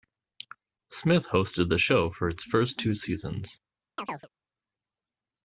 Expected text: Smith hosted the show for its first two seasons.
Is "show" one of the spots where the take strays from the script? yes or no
no